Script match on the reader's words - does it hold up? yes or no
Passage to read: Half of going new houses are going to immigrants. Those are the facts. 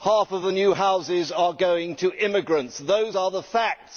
no